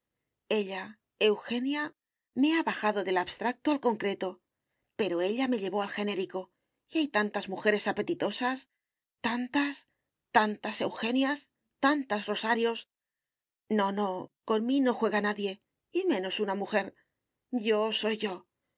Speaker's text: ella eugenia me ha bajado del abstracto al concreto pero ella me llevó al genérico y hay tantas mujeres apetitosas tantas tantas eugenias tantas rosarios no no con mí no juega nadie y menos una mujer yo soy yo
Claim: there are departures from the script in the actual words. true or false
false